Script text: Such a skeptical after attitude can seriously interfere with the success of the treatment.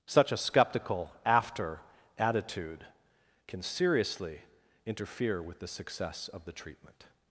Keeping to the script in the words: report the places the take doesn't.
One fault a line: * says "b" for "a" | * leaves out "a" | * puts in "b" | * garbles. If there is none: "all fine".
all fine